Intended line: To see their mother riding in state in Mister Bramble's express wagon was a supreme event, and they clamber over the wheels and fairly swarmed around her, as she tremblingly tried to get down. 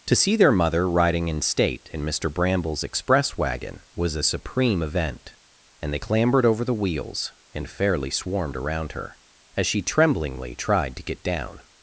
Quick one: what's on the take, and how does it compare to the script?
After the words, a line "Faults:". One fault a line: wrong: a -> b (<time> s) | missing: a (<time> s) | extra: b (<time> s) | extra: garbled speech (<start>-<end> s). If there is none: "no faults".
To see their mother riding in state in Mister Bramble's express wagon was a supreme event, and they clambered over the wheels and fairly swarmed around her, as she tremblingly tried to get down.
Faults:
wrong: clamber -> clambered (6.0 s)